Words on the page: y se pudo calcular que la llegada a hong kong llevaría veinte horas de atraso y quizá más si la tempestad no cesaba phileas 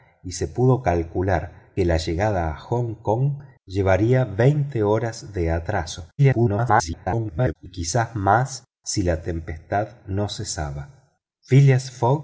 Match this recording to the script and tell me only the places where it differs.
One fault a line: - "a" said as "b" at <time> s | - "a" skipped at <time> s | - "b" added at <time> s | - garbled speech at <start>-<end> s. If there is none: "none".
- garbled speech at 6.2-7.5 s